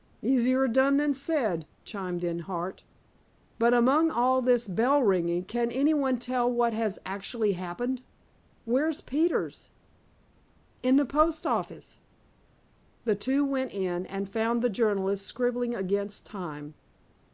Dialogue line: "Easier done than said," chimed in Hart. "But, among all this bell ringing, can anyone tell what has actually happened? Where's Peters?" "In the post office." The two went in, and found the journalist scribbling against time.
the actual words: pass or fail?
pass